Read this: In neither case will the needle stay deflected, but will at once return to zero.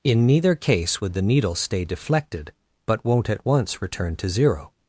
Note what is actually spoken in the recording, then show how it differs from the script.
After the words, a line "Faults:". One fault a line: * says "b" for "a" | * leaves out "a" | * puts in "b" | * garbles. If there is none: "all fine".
In neither case would the needle stay deflected, but won't at once return to zero.
Faults:
* says "would" for "will"
* says "won't" for "will"